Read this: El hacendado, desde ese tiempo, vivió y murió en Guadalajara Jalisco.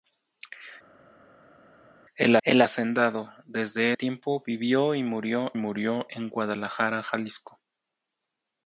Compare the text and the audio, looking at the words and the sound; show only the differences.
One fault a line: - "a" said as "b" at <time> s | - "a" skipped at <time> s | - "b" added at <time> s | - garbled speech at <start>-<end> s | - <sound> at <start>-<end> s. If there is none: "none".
- "el" added at 2.4 s
- "ese" skipped at 3.9 s
- "murió" added at 5.5 s